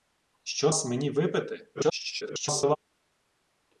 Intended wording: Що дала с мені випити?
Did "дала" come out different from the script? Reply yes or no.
yes